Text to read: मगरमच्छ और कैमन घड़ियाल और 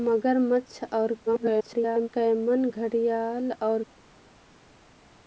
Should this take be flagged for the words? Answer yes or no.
yes